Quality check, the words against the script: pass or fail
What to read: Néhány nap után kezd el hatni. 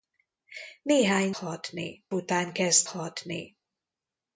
fail